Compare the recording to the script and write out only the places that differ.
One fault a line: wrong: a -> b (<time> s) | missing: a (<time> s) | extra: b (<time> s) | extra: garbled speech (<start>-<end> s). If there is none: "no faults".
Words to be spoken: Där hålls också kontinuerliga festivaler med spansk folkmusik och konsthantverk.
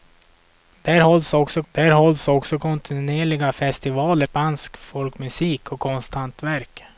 extra: där hålls också (1.7 s)
missing: med (4.3 s)